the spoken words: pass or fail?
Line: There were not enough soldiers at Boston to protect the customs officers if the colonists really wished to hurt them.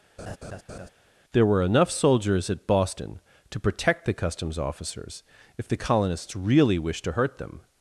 fail